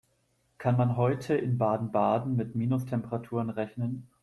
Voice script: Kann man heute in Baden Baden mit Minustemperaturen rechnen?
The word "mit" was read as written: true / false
true